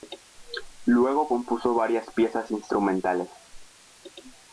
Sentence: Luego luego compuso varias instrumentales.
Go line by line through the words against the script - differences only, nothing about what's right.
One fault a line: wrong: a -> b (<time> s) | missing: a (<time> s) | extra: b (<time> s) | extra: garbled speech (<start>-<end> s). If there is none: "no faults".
missing: luego (1.3 s)
extra: piezas (2.1 s)